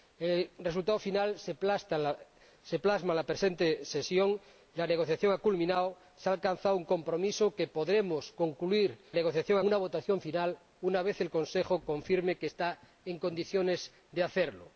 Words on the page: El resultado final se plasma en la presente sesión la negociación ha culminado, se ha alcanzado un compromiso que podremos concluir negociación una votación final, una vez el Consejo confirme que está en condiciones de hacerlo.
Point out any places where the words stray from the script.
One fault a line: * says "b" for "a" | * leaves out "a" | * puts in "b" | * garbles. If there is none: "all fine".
all fine